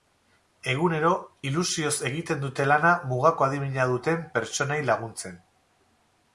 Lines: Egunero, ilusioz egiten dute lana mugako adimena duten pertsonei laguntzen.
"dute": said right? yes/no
yes